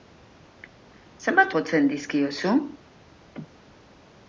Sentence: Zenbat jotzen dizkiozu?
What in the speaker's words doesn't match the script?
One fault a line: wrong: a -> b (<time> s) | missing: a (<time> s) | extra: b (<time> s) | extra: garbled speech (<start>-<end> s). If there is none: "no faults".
no faults